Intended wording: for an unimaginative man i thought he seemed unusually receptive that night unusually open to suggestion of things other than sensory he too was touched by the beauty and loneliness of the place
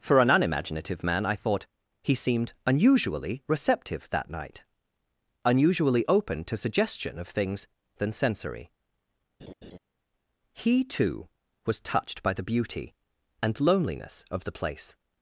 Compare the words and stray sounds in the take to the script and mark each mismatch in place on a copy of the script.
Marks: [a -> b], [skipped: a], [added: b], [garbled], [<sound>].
for an unimaginative man i thought he seemed unusually receptive that night unusually open to suggestion of things [skipped: other] than sensory [laugh] he too was touched by the beauty and loneliness of the place